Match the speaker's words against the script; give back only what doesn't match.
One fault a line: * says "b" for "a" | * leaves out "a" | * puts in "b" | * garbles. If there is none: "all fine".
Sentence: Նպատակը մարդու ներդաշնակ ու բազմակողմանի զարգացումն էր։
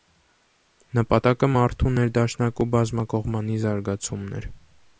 all fine